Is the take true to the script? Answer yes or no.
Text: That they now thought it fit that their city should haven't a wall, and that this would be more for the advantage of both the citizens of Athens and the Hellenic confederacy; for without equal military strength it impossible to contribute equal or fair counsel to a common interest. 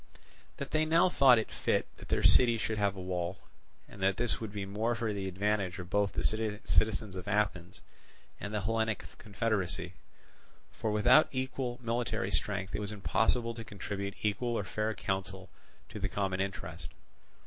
no